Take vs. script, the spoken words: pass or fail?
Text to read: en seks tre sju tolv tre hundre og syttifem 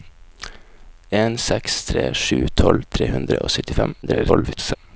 fail